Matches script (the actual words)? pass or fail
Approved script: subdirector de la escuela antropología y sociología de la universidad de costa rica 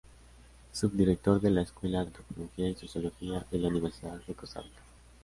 pass